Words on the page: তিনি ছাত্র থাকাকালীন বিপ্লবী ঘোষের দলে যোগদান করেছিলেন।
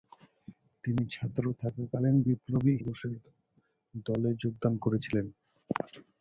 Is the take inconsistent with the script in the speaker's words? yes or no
no